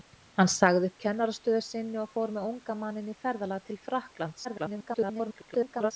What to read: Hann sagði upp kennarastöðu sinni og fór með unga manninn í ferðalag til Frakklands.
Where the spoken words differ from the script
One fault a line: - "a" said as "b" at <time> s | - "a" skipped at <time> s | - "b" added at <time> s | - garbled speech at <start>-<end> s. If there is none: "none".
- garbled speech at 4.4-5.9 s